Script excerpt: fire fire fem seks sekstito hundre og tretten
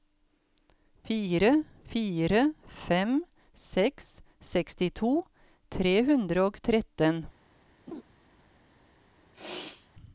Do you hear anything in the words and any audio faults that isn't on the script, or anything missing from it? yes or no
yes